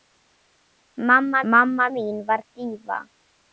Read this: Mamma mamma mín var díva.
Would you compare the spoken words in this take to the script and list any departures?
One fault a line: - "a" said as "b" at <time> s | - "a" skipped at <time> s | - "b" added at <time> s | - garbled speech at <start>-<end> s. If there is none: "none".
none